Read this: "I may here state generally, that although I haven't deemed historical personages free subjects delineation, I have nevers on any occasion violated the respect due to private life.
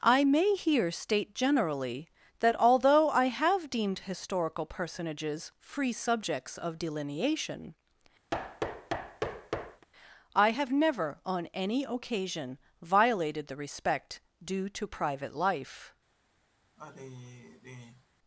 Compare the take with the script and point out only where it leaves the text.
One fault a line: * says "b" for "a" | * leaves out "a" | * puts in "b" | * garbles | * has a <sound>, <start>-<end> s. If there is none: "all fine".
* says "have" for "haven't"
* puts in "of"
* has a thud, 8.3-9.9 s
* says "never" for "nevers"
* has a sigh, 16.8-18.1 s